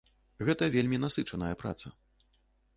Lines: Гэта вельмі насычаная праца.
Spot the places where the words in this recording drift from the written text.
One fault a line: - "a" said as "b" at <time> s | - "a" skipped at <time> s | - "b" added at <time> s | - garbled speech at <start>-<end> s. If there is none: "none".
none